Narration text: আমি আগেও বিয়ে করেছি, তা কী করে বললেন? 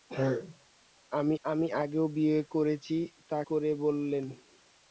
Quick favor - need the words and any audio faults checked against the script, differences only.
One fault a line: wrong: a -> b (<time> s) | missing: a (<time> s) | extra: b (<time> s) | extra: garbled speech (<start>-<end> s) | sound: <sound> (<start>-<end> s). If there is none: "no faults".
extra: আমি (1.4 s)
missing: কী (3.4 s)